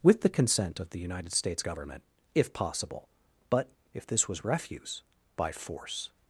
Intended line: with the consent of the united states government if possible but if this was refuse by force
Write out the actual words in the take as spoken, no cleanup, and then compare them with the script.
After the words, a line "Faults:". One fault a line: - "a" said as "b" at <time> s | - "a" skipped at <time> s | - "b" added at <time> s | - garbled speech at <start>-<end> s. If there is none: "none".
with the consent of the united states government if possible but if this was refuse by force
Faults:
none